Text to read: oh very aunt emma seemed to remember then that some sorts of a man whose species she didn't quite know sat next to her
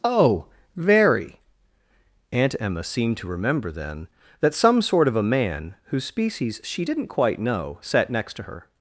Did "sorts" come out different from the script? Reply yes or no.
yes